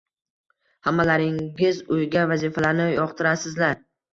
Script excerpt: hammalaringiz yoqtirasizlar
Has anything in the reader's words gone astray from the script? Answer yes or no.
yes